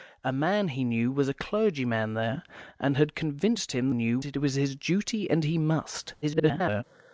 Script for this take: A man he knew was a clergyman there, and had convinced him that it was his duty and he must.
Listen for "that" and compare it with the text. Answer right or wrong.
wrong